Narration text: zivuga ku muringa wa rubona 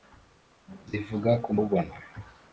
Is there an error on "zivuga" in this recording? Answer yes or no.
no